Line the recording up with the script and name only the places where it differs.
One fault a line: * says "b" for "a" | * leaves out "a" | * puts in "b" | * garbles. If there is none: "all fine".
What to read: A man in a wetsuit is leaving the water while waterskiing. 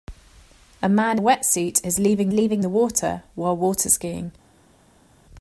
* leaves out "in"
* puts in "leaving"